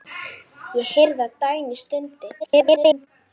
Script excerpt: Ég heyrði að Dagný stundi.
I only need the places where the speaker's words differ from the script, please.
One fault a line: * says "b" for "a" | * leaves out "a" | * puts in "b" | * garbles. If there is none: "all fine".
* garbles